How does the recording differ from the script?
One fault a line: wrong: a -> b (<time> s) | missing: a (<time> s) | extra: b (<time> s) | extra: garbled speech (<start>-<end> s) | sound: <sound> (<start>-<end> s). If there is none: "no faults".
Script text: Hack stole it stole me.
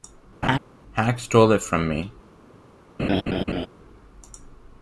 sound: laugh (0.4-0.6 s)
wrong: stole -> from (1.6 s)
sound: laugh (3.0-3.7 s)